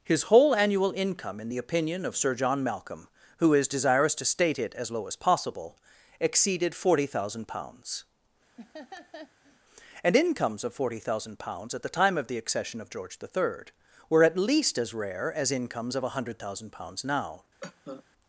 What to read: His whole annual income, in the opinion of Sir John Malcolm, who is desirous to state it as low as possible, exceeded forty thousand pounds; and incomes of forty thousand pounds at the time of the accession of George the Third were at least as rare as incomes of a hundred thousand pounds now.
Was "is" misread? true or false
false